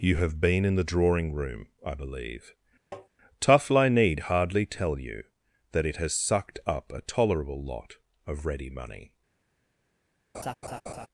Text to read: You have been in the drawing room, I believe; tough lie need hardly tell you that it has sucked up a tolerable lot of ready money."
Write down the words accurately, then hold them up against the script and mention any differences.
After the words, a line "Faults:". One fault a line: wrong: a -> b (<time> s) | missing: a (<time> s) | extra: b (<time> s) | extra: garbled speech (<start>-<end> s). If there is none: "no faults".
You have been in the drawing room, I believe; tough lie need hardly tell you that it has sucked up a tolerable lot of ready money."
Faults:
no faults